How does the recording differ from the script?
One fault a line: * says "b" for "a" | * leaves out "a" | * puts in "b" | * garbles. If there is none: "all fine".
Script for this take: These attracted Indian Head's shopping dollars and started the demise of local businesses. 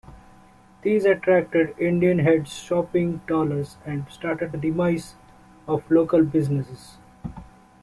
all fine